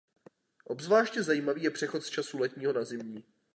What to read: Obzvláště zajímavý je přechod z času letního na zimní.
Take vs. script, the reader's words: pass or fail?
pass